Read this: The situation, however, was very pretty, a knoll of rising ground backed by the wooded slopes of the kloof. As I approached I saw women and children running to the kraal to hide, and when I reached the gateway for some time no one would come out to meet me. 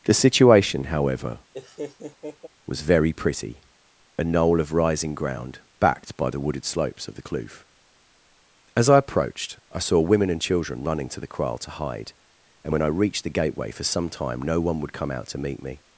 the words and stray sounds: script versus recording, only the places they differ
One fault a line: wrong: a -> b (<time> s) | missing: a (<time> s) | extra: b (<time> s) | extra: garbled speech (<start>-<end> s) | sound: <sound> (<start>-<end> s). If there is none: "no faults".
sound: laugh (1.5-2.5 s)